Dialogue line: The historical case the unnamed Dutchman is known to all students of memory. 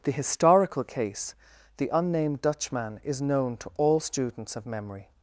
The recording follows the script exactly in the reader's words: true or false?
true